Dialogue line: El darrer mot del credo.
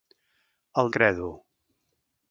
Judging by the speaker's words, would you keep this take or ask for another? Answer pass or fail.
fail